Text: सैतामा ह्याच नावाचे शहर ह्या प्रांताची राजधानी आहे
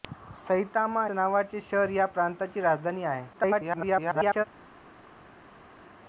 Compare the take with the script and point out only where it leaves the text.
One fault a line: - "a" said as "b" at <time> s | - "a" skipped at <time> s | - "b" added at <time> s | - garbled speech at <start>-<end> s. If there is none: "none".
- "ह्याच" skipped at 1.0 s
- garbled speech at 3.3-4.4 s